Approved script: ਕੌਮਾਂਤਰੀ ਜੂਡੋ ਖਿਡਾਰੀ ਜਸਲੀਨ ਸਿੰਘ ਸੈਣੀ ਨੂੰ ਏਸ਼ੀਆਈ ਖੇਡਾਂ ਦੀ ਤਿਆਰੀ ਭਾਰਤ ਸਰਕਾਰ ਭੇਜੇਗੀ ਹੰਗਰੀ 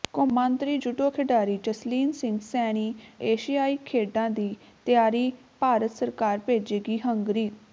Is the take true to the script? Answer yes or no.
no